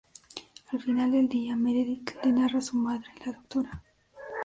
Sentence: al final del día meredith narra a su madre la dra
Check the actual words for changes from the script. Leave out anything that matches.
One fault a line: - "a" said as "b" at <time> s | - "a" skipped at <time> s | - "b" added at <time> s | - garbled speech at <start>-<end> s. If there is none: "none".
- "le" added at 2.2 s